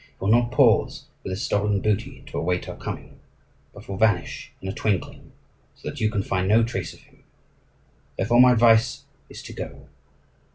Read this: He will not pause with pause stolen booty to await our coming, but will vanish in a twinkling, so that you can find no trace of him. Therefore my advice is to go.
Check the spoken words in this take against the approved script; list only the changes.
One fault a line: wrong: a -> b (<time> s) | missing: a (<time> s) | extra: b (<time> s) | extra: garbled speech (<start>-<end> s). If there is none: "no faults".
wrong: pause -> his (1.3 s)